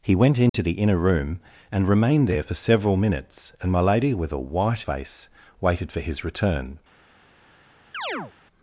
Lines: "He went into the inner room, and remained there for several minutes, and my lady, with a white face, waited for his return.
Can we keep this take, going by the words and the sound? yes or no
no